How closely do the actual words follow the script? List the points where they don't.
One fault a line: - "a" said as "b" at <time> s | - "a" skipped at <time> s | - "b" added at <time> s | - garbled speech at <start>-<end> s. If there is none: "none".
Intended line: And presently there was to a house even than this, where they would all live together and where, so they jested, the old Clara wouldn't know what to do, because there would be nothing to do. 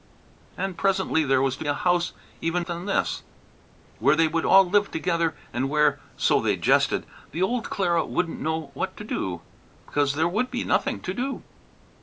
none